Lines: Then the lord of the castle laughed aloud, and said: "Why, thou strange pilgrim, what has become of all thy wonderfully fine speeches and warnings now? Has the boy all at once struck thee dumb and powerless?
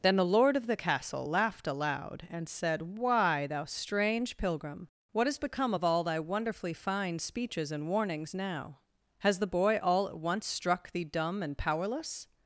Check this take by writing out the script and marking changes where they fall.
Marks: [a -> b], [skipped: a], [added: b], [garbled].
Then the lord of the castle laughed aloud, and said: "Why, thou strange pilgrim, what has become of all thy wonderfully fine speeches and warnings now? Has the boy all at once struck thee dumb and powerless?